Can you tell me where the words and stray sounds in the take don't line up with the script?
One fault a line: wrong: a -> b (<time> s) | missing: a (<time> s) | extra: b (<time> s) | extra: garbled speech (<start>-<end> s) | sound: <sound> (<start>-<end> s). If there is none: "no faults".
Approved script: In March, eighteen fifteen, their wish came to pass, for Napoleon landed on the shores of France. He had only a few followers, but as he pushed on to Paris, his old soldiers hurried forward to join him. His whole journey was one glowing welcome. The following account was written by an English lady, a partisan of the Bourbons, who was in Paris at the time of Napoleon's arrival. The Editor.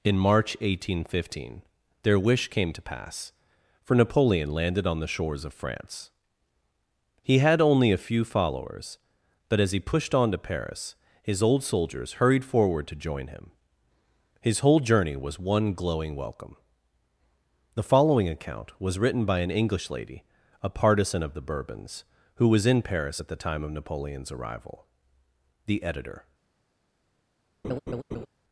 sound: laugh (27.6-28.3 s)